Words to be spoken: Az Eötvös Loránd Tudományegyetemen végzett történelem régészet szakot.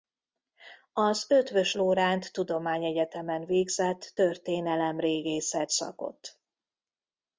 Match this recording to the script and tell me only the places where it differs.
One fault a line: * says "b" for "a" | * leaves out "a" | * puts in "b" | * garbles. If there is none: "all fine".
all fine